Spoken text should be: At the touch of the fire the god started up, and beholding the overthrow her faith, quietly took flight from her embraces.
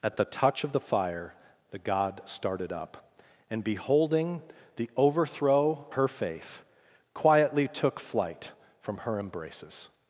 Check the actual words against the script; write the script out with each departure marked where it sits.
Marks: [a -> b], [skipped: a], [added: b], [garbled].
At the touch of the fire the god started up, and beholding the overthrow her faith, quietly took flight from her embraces.